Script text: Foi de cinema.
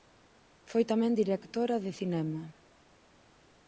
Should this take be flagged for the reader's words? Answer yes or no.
yes